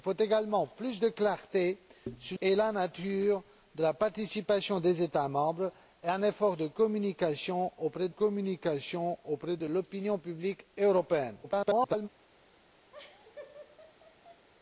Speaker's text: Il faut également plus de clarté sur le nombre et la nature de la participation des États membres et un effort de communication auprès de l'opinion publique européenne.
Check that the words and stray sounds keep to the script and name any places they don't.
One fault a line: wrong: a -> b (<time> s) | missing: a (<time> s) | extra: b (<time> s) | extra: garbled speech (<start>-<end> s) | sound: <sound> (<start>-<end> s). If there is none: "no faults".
missing: le nombre (2.4 s)
extra: communication auprès (8.1 s)
extra: garbled speech (11.4-12.1 s)
sound: laugh (12.9-14.5 s)